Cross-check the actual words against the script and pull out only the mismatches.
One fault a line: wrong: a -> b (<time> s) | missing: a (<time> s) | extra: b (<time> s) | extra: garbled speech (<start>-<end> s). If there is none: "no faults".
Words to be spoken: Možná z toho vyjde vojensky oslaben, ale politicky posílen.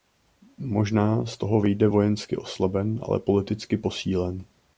no faults